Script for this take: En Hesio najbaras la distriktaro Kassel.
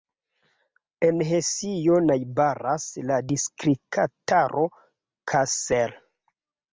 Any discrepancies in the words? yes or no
no